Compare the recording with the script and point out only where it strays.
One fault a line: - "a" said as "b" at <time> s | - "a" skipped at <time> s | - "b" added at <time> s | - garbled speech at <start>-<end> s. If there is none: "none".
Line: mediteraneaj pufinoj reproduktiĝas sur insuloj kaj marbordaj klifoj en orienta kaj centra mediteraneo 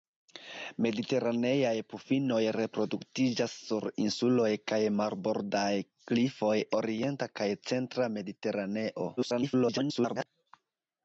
- "en" skipped at 6.6 s
- garbled speech at 9.2-10.3 s